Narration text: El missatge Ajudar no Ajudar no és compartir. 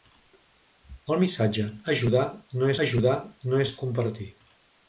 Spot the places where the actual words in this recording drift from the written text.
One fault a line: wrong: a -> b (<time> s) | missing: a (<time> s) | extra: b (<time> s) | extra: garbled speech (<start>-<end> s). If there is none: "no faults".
no faults